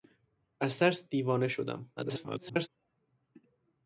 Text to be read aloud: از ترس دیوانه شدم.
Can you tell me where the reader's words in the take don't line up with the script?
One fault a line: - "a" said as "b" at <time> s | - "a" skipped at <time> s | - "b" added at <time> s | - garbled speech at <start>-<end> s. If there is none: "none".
- garbled speech at 2.0-2.7 s